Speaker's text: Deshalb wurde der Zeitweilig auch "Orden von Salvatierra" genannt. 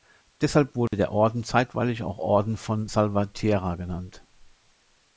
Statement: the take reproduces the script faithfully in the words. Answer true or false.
false